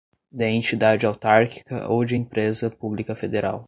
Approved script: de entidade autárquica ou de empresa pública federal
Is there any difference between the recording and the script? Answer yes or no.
no